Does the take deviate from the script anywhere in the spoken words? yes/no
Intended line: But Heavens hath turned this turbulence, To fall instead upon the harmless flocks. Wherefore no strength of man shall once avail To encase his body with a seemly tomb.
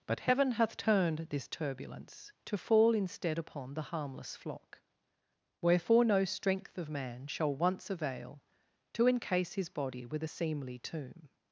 yes